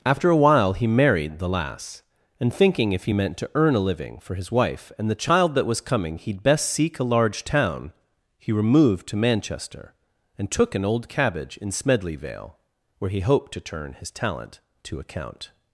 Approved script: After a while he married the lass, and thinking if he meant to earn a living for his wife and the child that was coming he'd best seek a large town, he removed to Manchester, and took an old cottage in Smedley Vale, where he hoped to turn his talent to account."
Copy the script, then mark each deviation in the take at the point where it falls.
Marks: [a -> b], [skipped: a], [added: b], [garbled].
After a while he married the lass, and thinking if he meant to earn a living for his wife and the child that was coming he'd best seek a large town, he removed to Manchester, and took an old [cottage -> cabbage] in Smedley Vale, where he hoped to turn his talent to account."